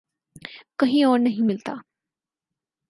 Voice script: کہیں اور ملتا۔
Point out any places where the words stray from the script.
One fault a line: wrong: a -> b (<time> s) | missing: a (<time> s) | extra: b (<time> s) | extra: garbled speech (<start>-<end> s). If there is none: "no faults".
extra: نہیں (1.2 s)